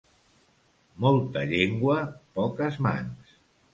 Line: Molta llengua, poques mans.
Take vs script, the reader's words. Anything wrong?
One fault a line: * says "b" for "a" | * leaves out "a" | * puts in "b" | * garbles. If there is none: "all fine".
all fine